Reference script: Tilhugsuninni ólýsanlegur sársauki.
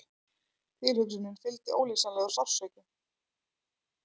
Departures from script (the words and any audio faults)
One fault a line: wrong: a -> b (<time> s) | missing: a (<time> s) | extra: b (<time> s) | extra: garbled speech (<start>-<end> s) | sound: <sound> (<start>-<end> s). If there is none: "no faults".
extra: fylgdi (1.4 s)